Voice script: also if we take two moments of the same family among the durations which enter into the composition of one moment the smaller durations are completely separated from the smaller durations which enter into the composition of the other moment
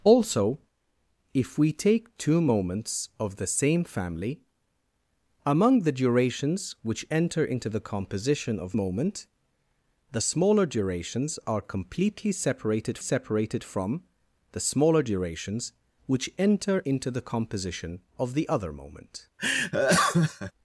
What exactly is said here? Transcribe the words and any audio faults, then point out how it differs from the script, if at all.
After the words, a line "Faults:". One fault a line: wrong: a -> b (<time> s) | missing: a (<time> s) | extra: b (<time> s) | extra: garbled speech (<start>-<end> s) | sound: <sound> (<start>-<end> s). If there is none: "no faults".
also if we take two moments of the same family among the durations which enter into the composition of moment the smaller durations are completely separated separated from the smaller durations which enter into the composition of the other moment
Faults:
missing: one (8.8 s)
extra: separated (13.0 s)
sound: laugh (19.4-20.5 s)